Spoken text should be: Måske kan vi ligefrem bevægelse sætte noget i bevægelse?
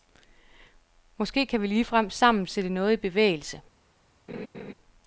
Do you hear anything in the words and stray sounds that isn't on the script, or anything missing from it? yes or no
yes